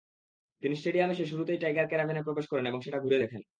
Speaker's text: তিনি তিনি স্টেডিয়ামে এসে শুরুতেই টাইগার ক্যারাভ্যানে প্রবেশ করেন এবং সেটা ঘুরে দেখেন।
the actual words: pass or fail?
fail